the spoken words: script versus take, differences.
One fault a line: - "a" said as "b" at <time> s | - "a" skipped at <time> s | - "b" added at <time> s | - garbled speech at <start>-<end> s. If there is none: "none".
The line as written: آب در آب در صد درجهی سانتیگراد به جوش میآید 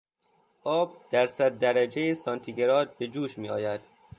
- "آب در" skipped at 1.3 s